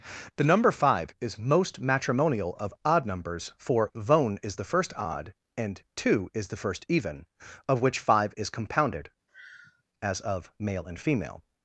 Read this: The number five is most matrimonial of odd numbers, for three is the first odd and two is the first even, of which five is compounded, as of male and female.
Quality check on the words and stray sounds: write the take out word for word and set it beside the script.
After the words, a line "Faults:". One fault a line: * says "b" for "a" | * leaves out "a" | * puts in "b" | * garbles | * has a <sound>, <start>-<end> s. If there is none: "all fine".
The number five is most matrimonial of odd numbers, for vone is the first odd and two is the first even, of which five is compounded, as of male and female.
Faults:
* says "vone" for "three"
* has a sigh, 9.3-9.8 s